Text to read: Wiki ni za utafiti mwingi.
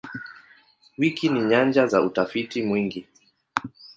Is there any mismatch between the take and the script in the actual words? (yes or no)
yes